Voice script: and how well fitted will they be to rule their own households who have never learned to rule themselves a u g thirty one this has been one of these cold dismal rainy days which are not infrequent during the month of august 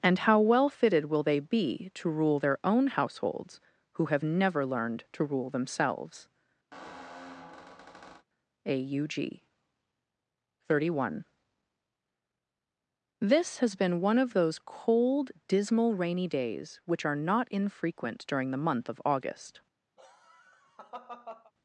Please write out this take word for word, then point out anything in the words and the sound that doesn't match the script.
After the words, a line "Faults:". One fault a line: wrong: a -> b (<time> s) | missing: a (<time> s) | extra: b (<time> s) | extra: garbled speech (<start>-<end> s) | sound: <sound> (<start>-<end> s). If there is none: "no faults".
and how well fitted will they be to rule their own households who have never learned to rule themselves a u g thirty one this has been one of those cold dismal rainy days which are not infrequent during the month of august
Faults:
sound: squeak (6.7-8.3 s)
wrong: these -> those (14.3 s)
sound: laugh (20.0-21.5 s)